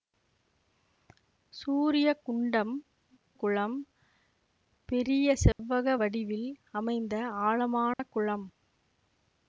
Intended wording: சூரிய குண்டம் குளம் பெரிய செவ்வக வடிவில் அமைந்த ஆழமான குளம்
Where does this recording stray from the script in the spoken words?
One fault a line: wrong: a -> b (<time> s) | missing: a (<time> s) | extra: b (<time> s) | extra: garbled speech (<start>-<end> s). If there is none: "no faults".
no faults